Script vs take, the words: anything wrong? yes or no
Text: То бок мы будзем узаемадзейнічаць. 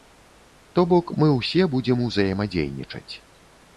yes